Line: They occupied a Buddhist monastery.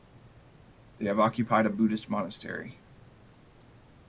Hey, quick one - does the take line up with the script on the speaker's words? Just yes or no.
no